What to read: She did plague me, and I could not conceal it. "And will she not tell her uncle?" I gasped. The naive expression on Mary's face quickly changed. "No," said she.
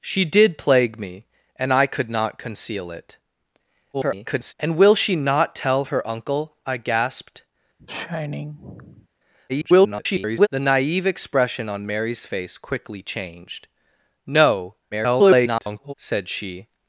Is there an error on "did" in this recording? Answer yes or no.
no